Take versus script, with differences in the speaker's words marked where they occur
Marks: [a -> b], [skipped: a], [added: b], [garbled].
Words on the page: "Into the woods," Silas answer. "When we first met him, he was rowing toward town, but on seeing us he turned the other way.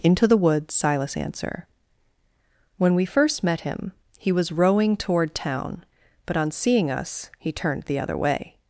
"Into the woods," Silas answer. "When we first met him, he was rowing toward town, but on seeing us he turned the other way.